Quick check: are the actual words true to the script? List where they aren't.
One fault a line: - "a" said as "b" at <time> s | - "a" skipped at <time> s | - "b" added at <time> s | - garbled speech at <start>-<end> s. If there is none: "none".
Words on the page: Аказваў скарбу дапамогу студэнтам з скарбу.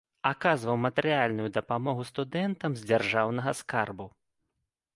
- "скарбу" said as "матэрыяльную" at 0.8 s
- "дзяржаўнага" added at 2.9 s